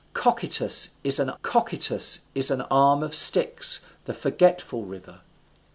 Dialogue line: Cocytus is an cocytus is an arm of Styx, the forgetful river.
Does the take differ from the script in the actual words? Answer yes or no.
no